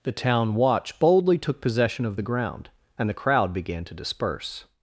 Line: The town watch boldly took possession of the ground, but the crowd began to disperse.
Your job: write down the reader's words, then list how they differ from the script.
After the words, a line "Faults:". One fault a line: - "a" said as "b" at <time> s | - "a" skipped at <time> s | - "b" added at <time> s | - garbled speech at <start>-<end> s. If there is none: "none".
The town watch boldly took possession of the ground, and the crowd began to disperse.
Faults:
- "but" said as "and" at 3.0 s